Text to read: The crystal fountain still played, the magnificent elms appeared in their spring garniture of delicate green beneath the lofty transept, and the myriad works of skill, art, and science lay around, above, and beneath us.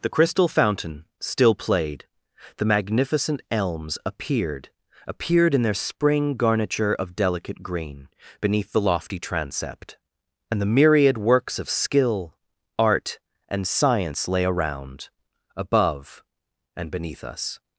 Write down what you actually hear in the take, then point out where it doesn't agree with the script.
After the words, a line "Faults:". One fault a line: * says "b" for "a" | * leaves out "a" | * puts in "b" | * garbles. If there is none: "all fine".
The crystal fountain still played, the magnificent elms appeared appeared in their spring garniture of delicate green beneath the lofty transept, and the myriad works of skill, art, and science lay around, above, and beneath us.
Faults:
* puts in "appeared"